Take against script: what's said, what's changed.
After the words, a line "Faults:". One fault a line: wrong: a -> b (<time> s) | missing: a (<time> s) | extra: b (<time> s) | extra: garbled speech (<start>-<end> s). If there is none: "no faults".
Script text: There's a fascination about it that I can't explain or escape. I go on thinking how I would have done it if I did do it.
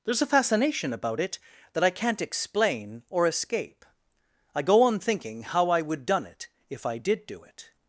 There's a fascination about it that I can't explain or escape. I go on thinking how I would done it if I did do it.
Faults:
missing: have (6.0 s)